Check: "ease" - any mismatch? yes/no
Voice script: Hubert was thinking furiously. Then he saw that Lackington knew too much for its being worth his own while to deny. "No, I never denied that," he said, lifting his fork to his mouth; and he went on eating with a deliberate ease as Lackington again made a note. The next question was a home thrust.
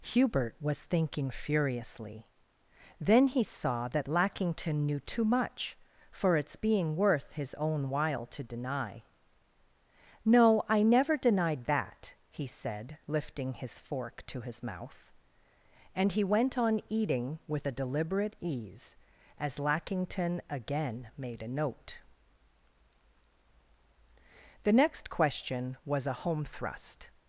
no